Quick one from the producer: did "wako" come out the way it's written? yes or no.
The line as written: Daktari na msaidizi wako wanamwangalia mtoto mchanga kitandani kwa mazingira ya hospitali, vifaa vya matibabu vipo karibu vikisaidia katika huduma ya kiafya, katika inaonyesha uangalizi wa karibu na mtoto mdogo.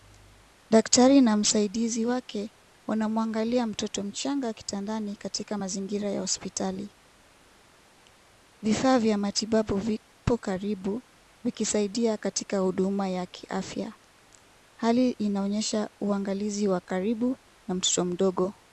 no